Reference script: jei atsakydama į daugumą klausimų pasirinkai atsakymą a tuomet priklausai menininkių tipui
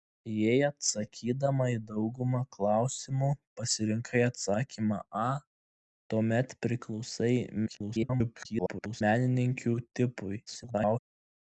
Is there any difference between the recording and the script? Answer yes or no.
yes